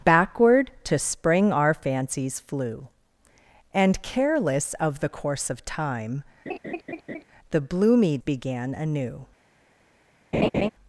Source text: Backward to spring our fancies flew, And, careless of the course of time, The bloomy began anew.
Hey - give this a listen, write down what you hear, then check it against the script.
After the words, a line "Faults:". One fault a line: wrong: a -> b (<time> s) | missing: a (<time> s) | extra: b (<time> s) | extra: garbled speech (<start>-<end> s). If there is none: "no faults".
Backward to spring our fancies flew, And, careless of the course of time, The bloomy began anew.
Faults:
no faults